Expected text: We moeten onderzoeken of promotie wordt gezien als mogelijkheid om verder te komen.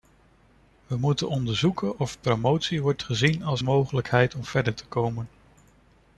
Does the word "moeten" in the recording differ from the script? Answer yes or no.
no